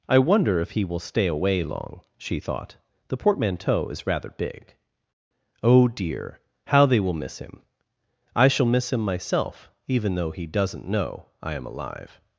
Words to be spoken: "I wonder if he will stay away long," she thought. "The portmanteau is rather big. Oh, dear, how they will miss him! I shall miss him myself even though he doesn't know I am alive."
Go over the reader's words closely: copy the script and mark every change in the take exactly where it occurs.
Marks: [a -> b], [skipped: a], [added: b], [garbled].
"I wonder if he will stay away long," she thought. "The portmanteau is rather big. Oh, dear, how they will miss him! I shall miss him myself even though he doesn't know I am alive."